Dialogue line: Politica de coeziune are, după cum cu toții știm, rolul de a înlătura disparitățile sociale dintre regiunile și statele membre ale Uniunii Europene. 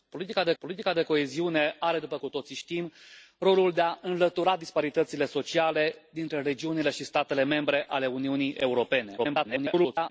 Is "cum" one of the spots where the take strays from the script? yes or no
yes